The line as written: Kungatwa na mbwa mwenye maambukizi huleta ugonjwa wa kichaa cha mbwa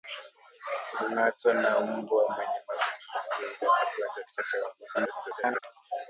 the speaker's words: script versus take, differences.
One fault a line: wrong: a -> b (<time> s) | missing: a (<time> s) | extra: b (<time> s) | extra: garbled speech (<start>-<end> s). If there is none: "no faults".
extra: garbled speech (4.9-5.6 s)